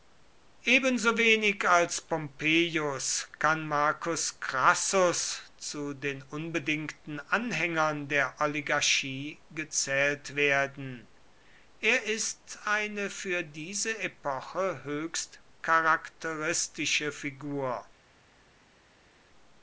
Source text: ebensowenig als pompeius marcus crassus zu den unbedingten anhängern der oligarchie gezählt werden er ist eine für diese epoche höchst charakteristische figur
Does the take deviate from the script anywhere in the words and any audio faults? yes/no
yes